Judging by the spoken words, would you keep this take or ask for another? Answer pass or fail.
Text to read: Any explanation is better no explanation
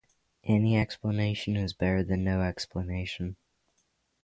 fail